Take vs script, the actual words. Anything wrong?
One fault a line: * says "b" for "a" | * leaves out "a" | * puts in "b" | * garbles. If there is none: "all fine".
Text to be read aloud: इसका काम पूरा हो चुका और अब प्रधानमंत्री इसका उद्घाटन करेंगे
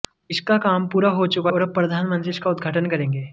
all fine